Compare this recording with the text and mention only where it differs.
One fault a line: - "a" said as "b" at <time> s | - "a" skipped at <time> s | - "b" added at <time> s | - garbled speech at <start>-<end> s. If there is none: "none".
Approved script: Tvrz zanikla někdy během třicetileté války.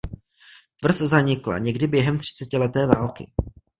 none